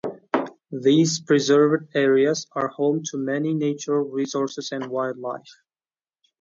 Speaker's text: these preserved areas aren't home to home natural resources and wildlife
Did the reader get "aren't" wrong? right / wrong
wrong